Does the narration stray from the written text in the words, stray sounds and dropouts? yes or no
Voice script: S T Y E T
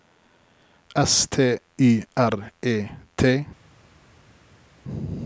yes